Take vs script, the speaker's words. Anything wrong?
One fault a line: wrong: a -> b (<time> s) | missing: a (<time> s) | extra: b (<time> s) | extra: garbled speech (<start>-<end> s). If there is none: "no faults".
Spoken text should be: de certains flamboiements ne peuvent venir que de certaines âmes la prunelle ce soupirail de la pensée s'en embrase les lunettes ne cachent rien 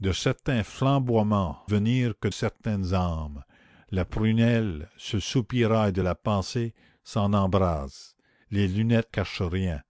missing: ne peuvent (1.6 s)
missing: de (2.3 s)
missing: ne (9.1 s)